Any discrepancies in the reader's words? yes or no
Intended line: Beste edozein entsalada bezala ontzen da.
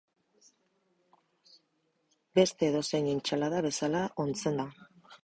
no